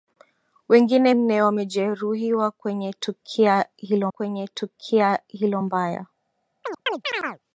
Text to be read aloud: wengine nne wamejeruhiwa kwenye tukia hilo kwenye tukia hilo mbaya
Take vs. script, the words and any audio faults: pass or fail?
fail